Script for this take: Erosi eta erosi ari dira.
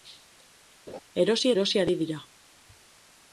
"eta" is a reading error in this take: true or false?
true